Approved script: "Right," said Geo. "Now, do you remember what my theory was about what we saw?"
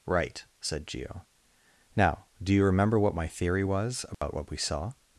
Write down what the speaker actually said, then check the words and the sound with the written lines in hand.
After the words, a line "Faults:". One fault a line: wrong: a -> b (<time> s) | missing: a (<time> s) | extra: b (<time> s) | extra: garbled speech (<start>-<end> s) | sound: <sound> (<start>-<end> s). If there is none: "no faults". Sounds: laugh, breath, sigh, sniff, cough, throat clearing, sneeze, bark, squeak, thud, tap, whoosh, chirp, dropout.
"Right," said Geo. "Now, do you remember what my theory was about what we saw?"
Faults:
sound: dropout (4.1-4.2 s)